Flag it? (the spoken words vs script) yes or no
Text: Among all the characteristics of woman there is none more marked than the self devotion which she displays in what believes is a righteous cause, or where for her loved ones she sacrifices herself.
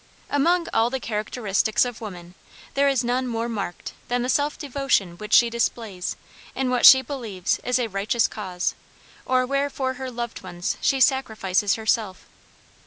yes